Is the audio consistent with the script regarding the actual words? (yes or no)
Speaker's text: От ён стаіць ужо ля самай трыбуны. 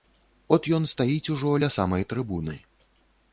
yes